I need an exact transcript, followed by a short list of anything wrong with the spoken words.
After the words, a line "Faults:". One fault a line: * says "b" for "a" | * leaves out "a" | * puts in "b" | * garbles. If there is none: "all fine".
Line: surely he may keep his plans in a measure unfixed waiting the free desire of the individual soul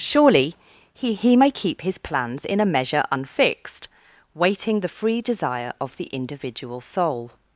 surely he he may keep his plans in a measure unfixed waiting the free desire of the individual soul
Faults:
* puts in "he"